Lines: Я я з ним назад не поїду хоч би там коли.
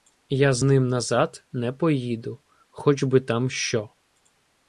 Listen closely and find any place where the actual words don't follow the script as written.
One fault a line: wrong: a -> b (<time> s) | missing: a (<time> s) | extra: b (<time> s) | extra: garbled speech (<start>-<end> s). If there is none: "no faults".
missing: я (0.5 s)
wrong: коли -> що (3.5 s)